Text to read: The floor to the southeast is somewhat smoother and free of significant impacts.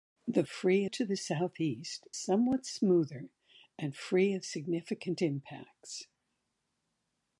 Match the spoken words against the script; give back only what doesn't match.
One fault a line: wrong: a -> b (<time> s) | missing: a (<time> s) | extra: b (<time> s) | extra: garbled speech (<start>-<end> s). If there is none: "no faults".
wrong: floor -> free (0.5 s)
missing: is (2.1 s)